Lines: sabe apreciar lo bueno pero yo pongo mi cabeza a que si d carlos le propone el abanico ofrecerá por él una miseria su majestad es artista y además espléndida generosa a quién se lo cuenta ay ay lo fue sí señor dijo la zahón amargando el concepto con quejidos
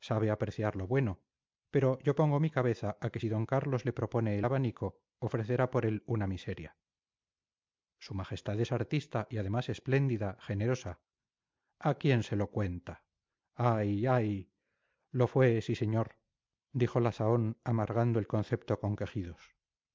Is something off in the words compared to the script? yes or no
no